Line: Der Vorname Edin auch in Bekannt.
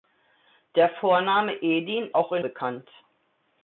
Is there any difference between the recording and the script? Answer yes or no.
no